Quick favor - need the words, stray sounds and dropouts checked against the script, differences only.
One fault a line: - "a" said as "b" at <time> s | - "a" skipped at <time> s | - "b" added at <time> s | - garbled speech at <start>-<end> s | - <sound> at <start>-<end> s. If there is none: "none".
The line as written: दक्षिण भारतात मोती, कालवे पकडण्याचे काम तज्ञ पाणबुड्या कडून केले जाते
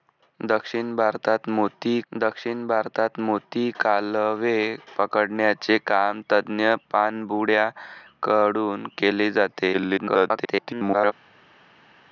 - "दक्षिण भारतात मोती" added at 2.1 s
- garbled speech at 9.7-11.1 s